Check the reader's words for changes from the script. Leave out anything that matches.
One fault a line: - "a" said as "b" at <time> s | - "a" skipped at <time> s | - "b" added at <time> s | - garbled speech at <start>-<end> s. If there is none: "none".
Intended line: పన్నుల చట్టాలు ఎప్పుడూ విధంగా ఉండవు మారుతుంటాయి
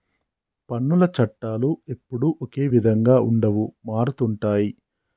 - "ఒకే" added at 2.4 s